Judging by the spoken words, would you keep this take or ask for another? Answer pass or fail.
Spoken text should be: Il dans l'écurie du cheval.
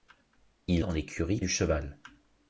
pass